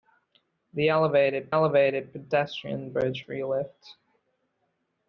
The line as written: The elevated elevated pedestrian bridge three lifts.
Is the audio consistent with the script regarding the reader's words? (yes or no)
yes